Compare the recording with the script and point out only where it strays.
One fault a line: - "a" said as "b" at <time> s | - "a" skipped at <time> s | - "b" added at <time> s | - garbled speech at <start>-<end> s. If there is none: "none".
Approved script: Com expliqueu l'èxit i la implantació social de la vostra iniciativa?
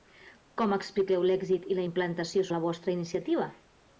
- "social" skipped at 2.5 s